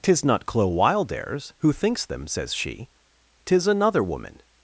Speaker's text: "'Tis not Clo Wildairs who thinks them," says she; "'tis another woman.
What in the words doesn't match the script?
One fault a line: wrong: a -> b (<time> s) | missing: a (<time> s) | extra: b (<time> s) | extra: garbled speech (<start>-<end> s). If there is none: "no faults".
no faults